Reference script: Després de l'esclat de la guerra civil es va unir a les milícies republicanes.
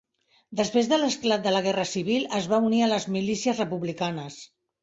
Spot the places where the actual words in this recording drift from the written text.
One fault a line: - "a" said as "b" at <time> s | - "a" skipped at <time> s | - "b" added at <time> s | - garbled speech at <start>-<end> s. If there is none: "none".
none